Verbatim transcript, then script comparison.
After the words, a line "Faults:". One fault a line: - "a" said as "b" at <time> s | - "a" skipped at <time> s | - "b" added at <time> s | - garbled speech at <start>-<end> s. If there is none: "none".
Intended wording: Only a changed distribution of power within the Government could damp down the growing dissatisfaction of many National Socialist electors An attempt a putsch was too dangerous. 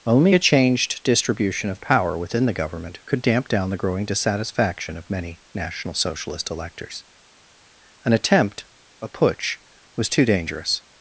Only a changed distribution of power within the Government could damp down the growing dissatisfaction of many National Socialist electors An attempt a putsch was too dangerous.
Faults:
none